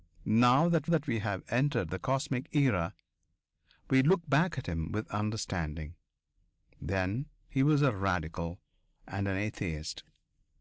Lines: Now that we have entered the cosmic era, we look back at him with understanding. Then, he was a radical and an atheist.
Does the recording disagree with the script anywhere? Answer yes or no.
yes